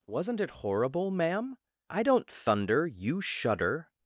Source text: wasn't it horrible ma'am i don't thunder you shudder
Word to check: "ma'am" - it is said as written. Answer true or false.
true